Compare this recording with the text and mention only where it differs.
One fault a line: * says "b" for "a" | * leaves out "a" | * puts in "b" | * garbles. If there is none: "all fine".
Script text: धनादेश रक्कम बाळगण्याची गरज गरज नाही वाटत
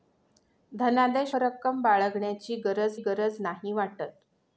all fine